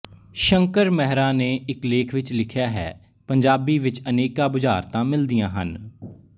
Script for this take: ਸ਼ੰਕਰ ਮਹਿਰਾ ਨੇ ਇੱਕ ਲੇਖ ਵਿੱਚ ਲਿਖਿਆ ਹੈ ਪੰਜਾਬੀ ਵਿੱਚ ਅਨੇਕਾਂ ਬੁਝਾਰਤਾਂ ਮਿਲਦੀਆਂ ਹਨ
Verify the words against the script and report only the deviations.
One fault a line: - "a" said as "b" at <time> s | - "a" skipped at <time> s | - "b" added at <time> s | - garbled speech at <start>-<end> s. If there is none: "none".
none